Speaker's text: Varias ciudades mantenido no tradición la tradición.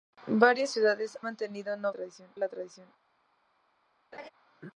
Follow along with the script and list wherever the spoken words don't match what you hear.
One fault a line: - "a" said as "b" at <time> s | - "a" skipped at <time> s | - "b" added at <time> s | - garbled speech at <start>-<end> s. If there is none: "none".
none